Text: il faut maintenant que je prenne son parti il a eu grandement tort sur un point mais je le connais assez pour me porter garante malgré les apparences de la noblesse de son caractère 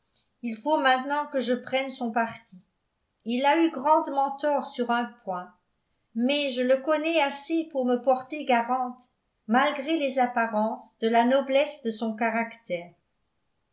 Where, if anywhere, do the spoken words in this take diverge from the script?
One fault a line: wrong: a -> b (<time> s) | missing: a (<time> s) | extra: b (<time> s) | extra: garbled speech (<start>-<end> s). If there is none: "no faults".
no faults